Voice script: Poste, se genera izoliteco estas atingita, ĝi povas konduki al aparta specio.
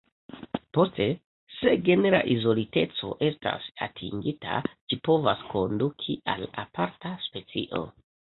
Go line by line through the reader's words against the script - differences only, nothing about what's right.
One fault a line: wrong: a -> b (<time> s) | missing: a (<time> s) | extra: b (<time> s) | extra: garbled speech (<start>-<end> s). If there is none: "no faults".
no faults